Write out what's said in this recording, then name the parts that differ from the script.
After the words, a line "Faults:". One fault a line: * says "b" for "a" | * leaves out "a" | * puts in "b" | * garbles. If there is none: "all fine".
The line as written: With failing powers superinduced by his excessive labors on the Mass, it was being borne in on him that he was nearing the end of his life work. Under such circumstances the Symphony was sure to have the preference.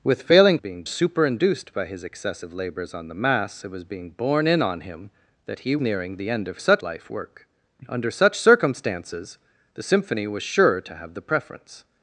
With failing being superinduced by his excessive labors on the Mass, it was being borne in on him that he nearing the end of such life work. Under such circumstances the Symphony was sure to have the preference.
Faults:
* says "being" for "powers"
* leaves out "was"
* says "such" for "his"